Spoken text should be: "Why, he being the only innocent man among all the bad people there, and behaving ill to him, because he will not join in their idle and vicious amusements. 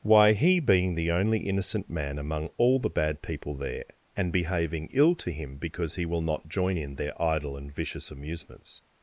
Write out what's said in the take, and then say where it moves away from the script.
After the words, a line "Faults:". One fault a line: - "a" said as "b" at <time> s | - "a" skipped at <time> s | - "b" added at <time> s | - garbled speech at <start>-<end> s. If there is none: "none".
"Why, he being the only innocent man among all the bad people there, and behaving ill to him, because he will not join in their idle and vicious amusements.
Faults:
none